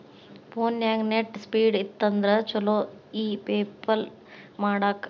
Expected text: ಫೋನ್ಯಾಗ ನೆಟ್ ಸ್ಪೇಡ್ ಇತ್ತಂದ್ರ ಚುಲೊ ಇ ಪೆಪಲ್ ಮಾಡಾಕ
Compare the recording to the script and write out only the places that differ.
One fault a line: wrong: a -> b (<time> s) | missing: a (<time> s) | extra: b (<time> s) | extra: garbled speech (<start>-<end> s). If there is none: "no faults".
no faults